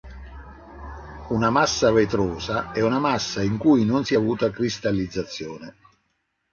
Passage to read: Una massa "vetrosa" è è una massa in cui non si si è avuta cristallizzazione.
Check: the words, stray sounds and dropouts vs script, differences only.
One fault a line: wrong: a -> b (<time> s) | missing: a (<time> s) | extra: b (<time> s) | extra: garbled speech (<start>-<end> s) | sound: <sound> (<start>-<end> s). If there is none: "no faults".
missing: è (2.8 s)
missing: si (4.1 s)